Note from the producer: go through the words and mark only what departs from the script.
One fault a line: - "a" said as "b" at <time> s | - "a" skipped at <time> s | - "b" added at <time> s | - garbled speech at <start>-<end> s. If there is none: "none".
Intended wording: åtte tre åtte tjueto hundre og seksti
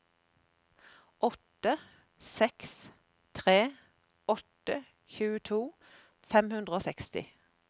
- "seks" added at 2.3 s
- "fem" added at 6.3 s